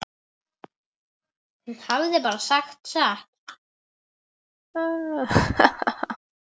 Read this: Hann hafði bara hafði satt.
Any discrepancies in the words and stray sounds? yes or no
yes